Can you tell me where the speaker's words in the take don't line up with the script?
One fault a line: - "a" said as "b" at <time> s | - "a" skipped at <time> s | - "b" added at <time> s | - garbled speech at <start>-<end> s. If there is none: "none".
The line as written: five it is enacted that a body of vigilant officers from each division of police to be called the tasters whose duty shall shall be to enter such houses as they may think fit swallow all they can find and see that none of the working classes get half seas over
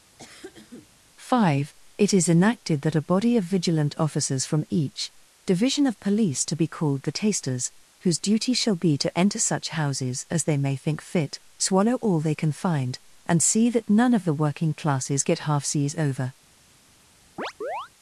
- "shall" skipped at 8.8 s